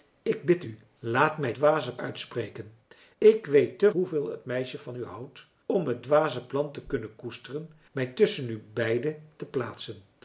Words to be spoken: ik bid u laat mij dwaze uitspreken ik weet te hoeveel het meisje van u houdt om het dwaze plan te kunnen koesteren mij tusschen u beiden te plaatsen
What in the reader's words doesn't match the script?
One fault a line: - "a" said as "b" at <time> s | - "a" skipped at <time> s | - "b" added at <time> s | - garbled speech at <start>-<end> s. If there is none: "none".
none